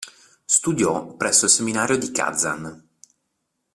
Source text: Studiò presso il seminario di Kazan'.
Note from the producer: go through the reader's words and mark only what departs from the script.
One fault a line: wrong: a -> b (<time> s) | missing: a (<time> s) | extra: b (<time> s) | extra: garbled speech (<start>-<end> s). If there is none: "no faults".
no faults